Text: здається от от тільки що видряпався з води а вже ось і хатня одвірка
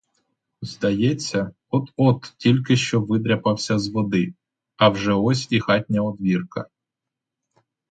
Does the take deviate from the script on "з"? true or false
false